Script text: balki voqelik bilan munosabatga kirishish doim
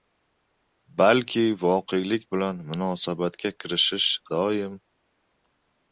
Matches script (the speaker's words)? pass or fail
pass